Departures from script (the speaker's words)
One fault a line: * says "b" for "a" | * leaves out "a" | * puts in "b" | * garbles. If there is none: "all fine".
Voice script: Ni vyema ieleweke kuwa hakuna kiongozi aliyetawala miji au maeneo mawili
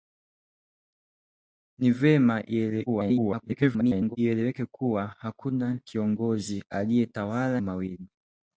* garbles
* leaves out "miji au maeneo"